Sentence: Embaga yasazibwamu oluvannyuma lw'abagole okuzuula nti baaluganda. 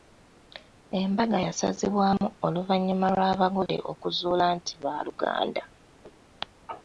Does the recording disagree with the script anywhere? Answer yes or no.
no